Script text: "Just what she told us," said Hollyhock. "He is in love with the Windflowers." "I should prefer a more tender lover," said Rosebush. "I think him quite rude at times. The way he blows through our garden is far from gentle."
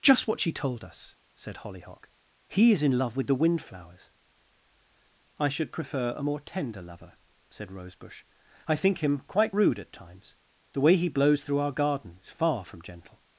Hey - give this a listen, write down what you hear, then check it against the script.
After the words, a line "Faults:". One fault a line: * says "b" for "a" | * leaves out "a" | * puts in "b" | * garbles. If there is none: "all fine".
"Just what she told us," said Hollyhock. "He is in love with the Windflowers." "I should prefer a more tender lover," said Rosebush. "I think him quite rude at times. The way he blows through our garden is far from gentle."
Faults:
all fine